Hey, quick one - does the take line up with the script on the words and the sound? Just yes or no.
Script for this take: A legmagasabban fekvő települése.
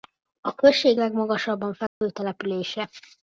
no